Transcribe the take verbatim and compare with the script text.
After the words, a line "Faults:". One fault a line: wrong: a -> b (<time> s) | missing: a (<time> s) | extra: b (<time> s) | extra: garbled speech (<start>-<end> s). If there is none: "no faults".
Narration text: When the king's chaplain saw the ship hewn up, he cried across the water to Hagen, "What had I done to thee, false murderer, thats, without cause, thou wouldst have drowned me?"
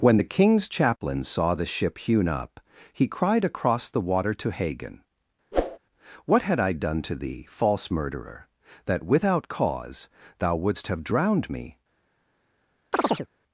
When the king's chaplain saw the ship hewn up, he cried across the water to Hagen, "What had I done to thee, false murderer, that, without cause, thou wouldst have drowned me?"
Faults:
wrong: thats -> that (8.8 s)